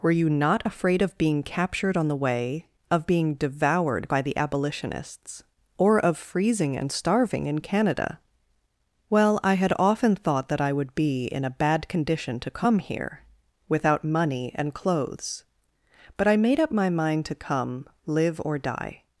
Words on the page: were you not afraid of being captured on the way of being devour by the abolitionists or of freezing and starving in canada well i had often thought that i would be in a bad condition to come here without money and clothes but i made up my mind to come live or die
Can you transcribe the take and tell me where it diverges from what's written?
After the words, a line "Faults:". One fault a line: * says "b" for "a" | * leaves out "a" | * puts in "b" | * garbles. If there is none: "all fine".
were you not afraid of being captured on the way of being devoured by the abolitionists or of freezing and starving in canada well i had often thought that i would be in a bad condition to come here without money and clothes but i made up my mind to come live or die
Faults:
* says "devoured" for "devour"